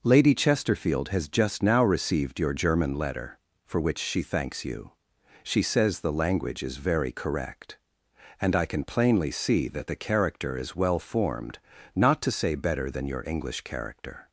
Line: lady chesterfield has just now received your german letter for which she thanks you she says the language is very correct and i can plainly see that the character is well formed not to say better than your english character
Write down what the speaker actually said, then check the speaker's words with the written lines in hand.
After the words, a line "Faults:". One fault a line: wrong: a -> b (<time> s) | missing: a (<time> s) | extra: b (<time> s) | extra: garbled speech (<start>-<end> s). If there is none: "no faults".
lady chesterfield has just now received your german letter for which she thanks you she says the language is very correct and i can plainly see that the character is well formed not to say better than your english character
Faults:
no faults